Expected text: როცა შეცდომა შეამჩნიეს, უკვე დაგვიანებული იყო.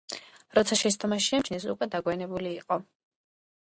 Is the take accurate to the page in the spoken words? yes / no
yes